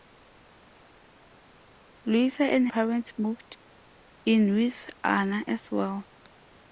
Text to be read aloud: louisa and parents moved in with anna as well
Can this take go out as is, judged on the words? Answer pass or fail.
pass